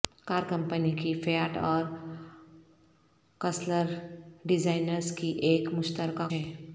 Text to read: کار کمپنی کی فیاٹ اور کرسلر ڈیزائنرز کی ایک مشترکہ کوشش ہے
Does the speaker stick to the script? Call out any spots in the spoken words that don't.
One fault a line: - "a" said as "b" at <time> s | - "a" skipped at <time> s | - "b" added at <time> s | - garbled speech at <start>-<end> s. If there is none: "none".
- "کوشش" skipped at 6.3 s